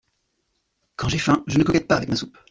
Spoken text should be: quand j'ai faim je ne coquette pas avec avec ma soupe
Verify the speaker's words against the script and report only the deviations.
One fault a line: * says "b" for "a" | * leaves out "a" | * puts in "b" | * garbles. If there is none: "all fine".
* leaves out "avec"